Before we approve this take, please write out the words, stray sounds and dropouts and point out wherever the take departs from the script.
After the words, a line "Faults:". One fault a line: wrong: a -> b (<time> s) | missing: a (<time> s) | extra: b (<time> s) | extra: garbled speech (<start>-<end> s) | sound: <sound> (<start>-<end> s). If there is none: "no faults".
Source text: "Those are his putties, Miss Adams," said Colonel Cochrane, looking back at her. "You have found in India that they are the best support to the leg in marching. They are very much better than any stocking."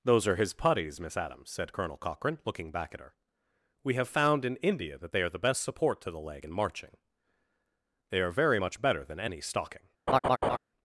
"Those are his putties, Miss Adams," said Colonel Cochrane, looking back at her. "We have found in India that they are the best support to the leg in marching. They are very much better than any stocking."
Faults:
wrong: You -> We (3.8 s)
sound: laugh (10.1-10.6 s)